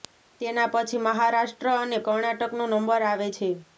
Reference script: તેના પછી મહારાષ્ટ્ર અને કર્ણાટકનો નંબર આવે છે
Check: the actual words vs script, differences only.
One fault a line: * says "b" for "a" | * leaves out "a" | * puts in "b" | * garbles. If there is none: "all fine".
all fine